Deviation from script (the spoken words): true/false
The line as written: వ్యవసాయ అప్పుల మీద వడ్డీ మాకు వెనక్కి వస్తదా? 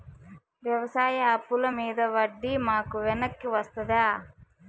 false